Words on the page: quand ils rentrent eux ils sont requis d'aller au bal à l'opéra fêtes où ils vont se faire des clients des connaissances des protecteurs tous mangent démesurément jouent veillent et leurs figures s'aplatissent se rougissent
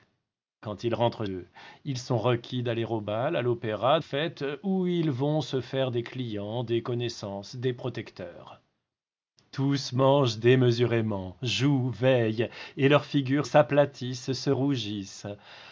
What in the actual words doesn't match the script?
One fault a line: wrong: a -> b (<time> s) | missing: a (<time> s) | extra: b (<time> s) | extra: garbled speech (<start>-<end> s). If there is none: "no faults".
no faults